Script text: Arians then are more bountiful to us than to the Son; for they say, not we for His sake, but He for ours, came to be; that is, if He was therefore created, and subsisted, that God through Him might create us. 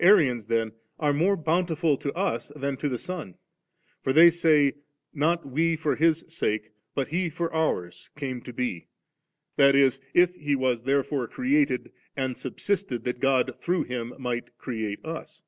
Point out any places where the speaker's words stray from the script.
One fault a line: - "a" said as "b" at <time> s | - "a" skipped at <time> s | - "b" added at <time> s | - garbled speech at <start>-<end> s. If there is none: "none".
none